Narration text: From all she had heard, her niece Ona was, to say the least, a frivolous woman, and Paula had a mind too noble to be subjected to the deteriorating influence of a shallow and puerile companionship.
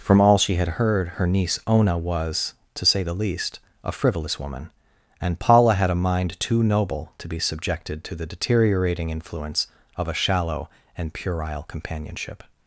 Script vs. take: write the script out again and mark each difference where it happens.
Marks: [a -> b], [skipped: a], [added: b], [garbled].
From all she had heard, her niece Ona was, to say the least, a frivolous woman, and Paula had a mind too noble to be subjected to the deteriorating influence of a shallow and puerile companionship.